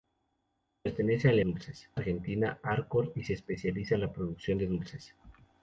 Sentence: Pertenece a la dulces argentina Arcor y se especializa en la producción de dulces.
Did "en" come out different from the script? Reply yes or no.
no